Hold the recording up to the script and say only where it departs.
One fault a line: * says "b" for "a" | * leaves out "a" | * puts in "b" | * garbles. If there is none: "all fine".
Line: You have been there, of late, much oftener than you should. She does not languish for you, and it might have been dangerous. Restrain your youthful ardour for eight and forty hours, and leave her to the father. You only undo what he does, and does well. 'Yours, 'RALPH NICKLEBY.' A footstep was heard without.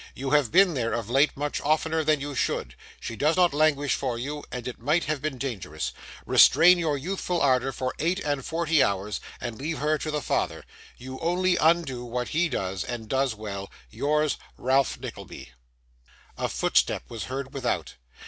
all fine